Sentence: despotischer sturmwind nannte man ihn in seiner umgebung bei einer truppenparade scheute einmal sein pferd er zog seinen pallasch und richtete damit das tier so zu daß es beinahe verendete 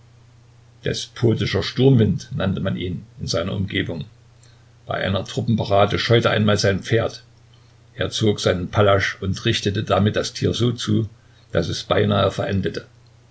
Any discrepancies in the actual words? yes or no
no